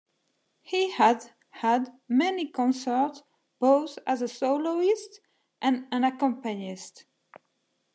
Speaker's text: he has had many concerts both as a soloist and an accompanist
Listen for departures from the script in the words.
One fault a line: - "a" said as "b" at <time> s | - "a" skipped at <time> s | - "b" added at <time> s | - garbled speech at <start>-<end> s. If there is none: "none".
none